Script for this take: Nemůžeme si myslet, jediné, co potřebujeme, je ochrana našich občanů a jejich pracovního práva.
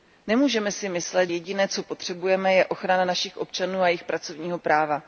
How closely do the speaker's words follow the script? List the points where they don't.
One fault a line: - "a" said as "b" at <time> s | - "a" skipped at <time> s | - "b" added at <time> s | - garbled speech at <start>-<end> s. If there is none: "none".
none